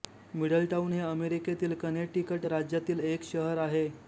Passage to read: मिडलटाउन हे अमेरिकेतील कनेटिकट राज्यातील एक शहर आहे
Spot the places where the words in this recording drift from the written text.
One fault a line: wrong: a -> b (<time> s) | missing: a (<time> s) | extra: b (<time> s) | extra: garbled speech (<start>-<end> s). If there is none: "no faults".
no faults